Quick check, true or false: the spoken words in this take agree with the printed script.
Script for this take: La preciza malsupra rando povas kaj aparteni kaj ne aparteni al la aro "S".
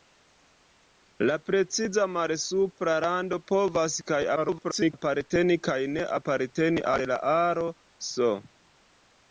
false